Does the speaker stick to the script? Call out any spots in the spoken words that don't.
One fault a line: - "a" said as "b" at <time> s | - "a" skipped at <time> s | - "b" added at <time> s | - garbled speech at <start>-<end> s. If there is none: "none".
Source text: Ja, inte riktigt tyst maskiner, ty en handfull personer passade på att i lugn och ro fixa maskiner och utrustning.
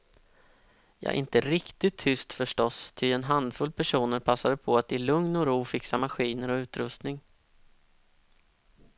- "maskiner" said as "förstås" at 2.3 s